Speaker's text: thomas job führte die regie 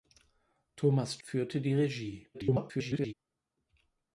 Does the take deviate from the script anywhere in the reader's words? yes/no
yes